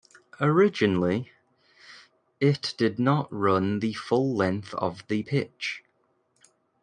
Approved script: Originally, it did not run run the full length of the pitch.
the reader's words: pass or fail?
fail